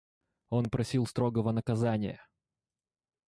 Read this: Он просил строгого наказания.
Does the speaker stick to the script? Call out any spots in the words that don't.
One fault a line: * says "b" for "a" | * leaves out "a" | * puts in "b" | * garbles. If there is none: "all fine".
all fine